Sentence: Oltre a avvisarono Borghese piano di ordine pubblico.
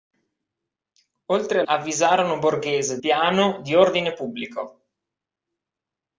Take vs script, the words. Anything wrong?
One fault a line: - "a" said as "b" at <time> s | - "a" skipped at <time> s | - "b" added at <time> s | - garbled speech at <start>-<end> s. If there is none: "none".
none